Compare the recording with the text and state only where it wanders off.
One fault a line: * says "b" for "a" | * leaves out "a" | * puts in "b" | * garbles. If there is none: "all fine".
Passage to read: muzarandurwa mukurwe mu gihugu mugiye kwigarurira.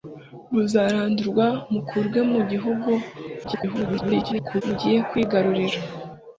* garbles